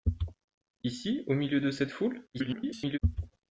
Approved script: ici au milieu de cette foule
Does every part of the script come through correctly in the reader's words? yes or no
no